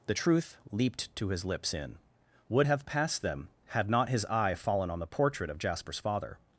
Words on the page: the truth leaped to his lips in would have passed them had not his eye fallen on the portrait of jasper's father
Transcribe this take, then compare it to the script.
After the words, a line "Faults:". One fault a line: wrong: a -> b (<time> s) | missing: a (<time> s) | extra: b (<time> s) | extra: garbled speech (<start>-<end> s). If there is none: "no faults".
the truth leaped to his lips in would have passed them had not his eye fallen on the portrait of jasper's father
Faults:
no faults